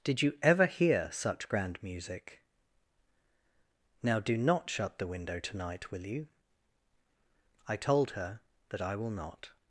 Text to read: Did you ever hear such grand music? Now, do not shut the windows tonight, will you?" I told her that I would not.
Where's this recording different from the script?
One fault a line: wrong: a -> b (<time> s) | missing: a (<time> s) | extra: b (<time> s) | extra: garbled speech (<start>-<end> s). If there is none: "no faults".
wrong: windows -> window (5.0 s)
wrong: would -> will (8.9 s)